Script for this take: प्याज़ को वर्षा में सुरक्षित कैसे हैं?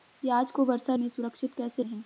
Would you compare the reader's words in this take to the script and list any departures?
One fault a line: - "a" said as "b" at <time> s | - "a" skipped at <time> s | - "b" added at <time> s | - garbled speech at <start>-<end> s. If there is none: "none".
none